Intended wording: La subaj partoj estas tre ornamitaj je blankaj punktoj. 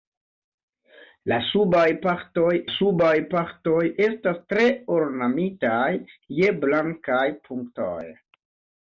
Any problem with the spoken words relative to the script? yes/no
yes